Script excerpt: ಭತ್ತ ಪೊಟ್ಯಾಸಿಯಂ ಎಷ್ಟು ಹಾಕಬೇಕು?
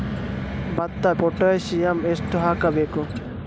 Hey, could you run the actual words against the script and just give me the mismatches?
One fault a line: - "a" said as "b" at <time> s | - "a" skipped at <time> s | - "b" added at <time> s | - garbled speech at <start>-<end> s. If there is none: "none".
none